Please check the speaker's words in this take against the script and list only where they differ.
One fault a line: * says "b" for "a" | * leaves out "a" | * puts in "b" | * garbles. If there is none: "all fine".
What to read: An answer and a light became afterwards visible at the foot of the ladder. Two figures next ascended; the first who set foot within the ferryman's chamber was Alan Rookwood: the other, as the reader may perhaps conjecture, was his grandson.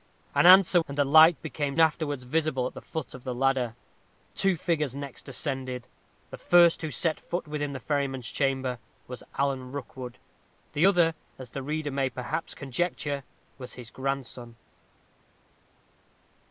all fine